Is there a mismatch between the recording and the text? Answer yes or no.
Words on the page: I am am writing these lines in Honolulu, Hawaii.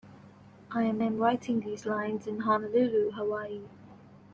no